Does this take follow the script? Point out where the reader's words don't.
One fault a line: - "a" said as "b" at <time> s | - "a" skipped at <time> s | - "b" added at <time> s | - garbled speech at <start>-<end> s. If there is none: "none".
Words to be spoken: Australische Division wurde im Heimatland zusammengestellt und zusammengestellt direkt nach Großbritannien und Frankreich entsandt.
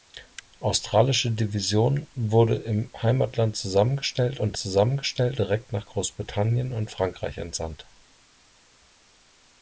none